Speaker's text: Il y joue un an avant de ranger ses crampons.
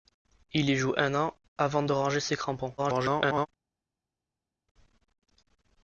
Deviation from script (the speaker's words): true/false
true